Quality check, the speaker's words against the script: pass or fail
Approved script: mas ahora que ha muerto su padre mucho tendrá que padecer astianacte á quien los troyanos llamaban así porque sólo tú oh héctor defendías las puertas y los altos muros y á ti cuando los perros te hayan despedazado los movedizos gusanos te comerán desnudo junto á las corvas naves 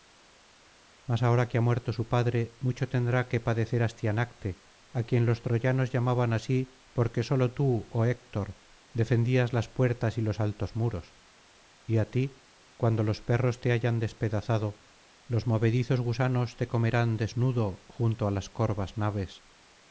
pass